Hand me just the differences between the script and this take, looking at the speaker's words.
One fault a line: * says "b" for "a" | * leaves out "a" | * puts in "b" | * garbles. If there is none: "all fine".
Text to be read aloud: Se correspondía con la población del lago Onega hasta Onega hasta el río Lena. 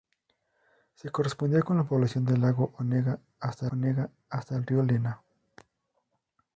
all fine